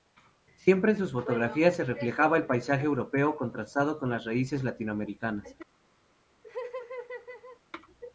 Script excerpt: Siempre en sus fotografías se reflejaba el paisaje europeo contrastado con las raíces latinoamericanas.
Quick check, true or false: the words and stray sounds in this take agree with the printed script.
false